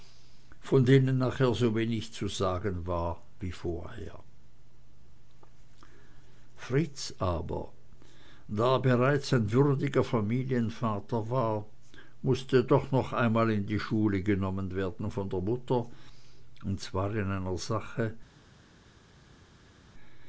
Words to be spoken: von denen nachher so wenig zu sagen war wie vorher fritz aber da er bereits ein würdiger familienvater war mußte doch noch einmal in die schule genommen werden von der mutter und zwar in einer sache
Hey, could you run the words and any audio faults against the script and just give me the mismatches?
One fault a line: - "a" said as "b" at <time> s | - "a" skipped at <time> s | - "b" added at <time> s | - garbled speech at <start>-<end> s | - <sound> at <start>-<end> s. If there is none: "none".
none